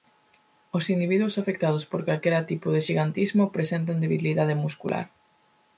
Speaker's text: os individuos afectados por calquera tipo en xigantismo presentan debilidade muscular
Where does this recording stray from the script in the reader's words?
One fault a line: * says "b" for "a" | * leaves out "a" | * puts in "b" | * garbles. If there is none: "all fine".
* says "de" for "en"